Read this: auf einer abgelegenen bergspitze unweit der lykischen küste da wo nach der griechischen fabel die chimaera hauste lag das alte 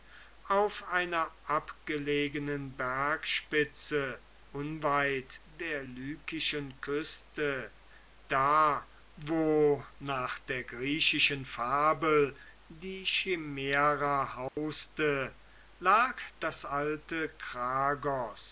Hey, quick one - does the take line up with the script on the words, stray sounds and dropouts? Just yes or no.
no